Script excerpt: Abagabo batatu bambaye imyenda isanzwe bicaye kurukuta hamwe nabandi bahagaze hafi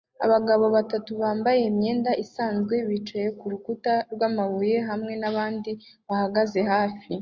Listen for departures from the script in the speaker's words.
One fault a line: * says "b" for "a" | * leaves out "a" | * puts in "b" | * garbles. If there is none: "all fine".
* puts in "rwamabuye"